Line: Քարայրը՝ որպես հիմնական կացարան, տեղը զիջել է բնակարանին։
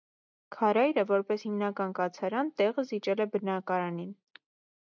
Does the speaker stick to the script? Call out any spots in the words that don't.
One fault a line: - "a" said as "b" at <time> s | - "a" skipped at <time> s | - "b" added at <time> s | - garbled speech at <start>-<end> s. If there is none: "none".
none